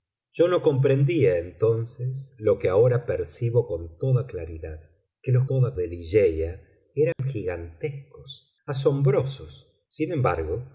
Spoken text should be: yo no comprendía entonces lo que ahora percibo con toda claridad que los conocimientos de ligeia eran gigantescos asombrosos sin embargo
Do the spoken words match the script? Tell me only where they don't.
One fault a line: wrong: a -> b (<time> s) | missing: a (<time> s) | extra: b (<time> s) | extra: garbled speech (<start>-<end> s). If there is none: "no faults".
wrong: conocimientos -> toda (5.4 s)